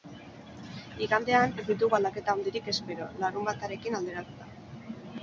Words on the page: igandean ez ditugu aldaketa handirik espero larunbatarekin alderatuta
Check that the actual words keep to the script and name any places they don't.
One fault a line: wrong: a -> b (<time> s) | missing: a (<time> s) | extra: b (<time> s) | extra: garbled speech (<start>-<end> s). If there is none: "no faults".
no faults